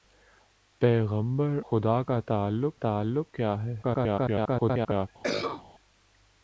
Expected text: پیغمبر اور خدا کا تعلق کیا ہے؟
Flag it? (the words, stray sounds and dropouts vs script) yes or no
yes